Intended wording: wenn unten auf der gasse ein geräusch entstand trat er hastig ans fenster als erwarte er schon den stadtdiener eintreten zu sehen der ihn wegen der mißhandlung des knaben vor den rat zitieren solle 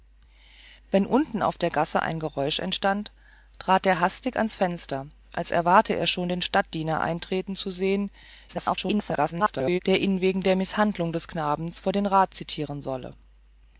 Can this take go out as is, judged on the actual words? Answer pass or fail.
fail